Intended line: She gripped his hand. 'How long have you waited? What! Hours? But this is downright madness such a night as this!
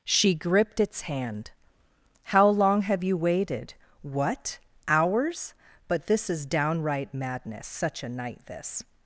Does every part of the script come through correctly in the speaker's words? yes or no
no